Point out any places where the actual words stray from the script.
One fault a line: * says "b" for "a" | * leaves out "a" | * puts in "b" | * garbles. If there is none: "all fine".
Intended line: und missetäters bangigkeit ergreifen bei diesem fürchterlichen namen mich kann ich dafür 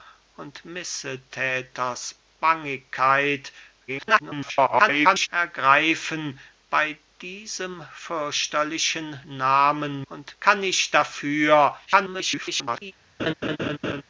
* garbles
* says "und" for "mich"
* garbles